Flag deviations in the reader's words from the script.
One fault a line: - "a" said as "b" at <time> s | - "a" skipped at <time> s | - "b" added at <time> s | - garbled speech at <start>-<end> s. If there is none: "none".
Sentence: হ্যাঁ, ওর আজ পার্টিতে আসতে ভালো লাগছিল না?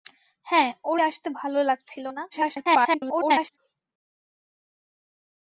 - "আজ পার্টিতে" skipped at 1.0 s
- garbled speech at 2.3-3.6 s